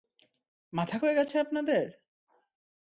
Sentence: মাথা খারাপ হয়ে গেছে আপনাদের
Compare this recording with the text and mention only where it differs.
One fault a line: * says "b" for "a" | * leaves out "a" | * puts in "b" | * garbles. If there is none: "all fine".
* leaves out "খারাপ"